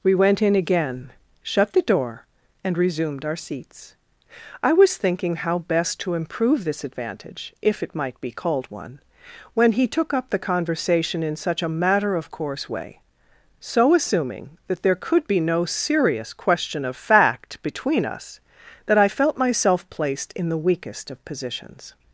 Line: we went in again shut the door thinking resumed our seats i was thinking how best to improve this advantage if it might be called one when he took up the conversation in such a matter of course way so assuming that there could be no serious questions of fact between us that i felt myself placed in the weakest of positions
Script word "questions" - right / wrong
wrong